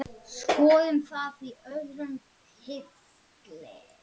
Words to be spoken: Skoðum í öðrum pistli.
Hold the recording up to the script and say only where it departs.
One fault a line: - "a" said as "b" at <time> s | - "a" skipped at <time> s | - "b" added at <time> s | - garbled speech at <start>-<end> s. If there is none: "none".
- "það" added at 1.1 s